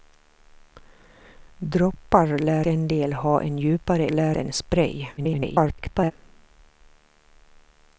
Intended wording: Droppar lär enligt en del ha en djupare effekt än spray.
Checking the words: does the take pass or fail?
fail